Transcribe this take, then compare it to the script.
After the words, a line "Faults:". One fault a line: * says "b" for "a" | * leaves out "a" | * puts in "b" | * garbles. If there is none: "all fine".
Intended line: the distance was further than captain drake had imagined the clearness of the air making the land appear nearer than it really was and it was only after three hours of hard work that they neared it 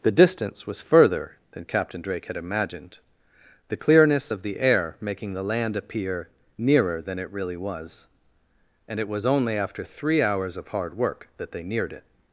the distance was further than captain drake had imagined the clearness of the air making the land appear nearer than it really was and it was only after three hours of hard work that they neared it
Faults:
all fine